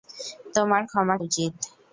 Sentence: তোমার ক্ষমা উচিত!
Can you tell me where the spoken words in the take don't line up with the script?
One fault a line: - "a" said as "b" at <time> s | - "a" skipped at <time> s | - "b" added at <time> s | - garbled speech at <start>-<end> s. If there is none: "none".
none